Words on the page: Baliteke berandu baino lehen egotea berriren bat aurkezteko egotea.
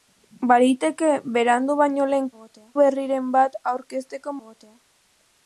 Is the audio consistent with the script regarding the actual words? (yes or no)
yes